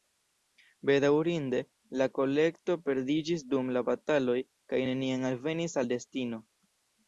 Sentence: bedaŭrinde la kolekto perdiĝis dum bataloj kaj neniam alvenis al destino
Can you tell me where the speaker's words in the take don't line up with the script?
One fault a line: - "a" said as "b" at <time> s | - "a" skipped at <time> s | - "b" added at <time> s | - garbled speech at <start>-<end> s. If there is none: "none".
- "la" added at 3.8 s